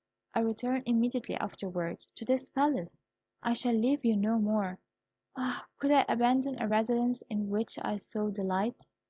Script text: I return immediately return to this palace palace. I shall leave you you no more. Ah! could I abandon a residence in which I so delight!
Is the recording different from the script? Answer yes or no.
yes